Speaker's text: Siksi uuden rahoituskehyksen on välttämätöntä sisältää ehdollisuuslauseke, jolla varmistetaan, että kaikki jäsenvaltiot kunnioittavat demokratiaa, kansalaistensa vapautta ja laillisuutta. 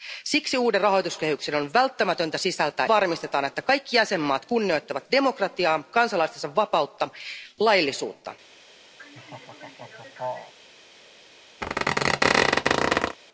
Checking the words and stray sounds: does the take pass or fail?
fail